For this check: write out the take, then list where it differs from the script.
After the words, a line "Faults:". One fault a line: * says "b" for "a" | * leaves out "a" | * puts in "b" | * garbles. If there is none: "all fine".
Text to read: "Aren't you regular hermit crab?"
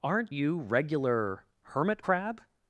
"Aren't you regular hermit crab?"
Faults:
all fine